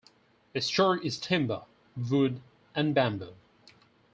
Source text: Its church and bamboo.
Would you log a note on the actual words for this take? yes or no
yes